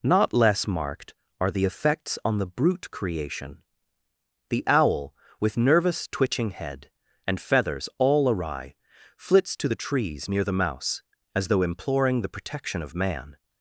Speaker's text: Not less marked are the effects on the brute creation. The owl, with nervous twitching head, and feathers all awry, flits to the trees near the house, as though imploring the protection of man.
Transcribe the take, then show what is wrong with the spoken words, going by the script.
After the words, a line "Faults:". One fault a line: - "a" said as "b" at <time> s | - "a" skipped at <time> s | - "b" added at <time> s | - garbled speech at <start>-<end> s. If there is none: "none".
Not less marked are the effects on the brute creation. The owl, with nervous twitching head, and feathers all awry, flits to the trees near the mouse, as though imploring the protection of man.
Faults:
- "house" said as "mouse" at 10.5 s